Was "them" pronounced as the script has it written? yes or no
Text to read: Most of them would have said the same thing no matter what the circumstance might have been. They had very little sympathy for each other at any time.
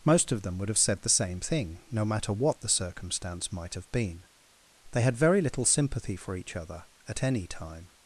yes